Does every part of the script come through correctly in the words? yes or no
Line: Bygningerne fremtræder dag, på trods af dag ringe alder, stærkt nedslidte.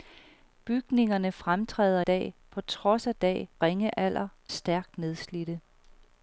yes